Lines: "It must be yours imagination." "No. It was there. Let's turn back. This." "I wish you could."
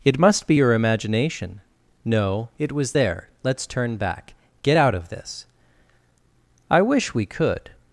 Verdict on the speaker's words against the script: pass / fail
fail